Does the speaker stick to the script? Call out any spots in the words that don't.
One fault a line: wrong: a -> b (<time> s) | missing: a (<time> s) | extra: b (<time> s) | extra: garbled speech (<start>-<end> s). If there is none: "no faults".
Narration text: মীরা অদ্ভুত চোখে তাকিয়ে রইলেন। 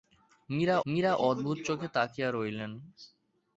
extra: মীরা (0.9 s)